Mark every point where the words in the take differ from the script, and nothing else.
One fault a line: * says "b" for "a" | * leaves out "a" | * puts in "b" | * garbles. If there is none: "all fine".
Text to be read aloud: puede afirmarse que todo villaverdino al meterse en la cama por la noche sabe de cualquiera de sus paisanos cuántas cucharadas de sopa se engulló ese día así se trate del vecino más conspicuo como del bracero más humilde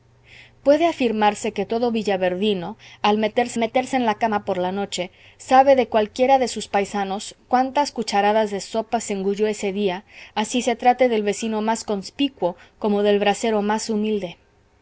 * puts in "meterse"